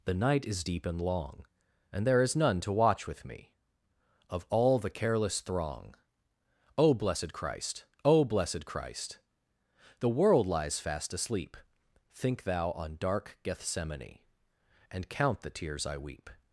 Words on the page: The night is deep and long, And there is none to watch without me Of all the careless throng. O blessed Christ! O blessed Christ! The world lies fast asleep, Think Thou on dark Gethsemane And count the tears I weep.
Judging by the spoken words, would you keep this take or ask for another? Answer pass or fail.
fail